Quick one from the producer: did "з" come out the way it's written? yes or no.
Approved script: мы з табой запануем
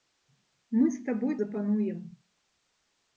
yes